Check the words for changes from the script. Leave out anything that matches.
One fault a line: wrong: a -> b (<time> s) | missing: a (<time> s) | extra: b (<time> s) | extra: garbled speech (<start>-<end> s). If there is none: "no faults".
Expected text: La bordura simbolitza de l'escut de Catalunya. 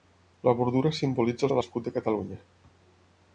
no faults